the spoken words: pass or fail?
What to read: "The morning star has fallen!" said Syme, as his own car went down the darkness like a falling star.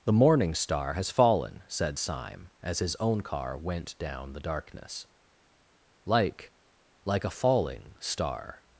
fail